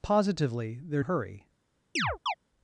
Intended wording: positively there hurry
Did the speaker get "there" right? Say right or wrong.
right